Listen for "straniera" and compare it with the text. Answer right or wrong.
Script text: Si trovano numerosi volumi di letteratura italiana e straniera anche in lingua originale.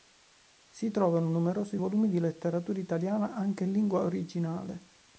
wrong